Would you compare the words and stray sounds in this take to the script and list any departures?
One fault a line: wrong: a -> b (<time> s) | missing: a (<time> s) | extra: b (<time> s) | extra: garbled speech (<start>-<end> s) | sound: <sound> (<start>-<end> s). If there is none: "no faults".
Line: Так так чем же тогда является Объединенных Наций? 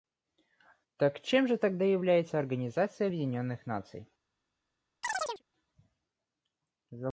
missing: так (1.2 s)
extra: Организация (2.4 s)
sound: chirp (5.0-5.4 s)